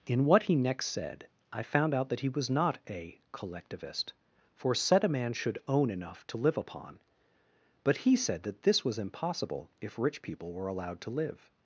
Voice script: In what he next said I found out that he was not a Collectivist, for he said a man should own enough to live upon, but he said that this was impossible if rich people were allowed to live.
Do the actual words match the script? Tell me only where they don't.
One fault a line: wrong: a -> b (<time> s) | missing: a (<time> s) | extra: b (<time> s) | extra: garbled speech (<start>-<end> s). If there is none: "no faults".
missing: he (4.7 s)